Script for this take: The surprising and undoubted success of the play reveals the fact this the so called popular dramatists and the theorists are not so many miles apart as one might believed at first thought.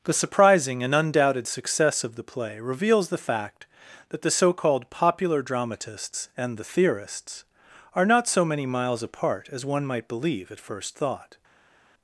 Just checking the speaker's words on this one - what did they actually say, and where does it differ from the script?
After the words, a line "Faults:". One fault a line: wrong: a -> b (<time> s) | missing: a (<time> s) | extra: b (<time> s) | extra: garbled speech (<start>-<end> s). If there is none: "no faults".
The surprising and undoubted success of the play reveals the fact that the so called popular dramatists and the theorists are not so many miles apart as one might believe at first thought.
Faults:
wrong: this -> that (4.1 s)
wrong: believed -> believe (10.1 s)